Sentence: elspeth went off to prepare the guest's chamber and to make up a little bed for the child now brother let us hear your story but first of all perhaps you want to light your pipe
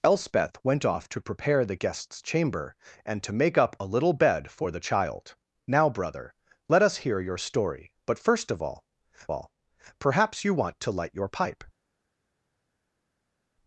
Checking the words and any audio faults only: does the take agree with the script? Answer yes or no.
no